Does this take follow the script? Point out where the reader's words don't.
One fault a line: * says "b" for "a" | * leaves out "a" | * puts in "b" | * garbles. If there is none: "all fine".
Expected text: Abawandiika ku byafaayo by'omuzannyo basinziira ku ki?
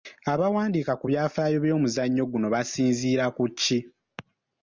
* puts in "guno"